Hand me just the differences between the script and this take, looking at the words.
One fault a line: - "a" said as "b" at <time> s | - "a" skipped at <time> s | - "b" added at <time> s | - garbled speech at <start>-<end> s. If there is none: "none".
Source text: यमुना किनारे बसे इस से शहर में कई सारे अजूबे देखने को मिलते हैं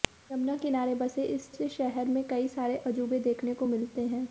none